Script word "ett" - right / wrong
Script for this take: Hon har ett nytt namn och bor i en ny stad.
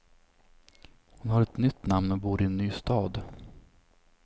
right